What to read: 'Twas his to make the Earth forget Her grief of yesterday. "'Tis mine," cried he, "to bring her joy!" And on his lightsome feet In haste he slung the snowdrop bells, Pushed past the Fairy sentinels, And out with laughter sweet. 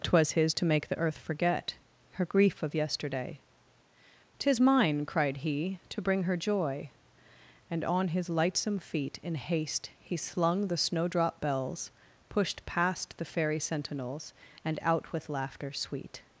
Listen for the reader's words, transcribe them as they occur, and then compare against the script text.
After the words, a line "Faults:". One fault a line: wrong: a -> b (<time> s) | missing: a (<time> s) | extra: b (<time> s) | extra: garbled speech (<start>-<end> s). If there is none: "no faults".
'Twas his to make the Earth forget Her grief of yesterday. "'Tis mine," cried he, "to bring her joy!" And on his lightsome feet In haste he slung the snowdrop bells, Pushed past the Fairy sentinels, And out with laughter sweet.
Faults:
no faults